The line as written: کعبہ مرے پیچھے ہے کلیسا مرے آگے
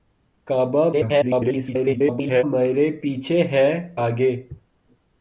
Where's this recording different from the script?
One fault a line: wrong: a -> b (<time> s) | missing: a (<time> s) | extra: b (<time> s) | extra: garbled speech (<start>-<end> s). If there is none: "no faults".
extra: garbled speech (0.9-2.4 s)
missing: کلیسا مرے (3.7 s)